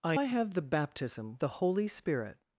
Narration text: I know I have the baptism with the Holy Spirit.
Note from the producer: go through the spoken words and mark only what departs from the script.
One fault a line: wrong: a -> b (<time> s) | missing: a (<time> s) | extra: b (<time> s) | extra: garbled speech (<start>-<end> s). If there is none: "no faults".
missing: know (0.2 s)
missing: with (1.4 s)